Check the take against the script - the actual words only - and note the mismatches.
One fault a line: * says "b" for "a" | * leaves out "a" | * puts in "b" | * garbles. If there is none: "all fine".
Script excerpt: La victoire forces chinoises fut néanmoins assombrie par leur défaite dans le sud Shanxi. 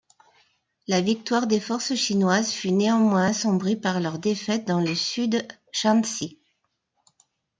* puts in "des"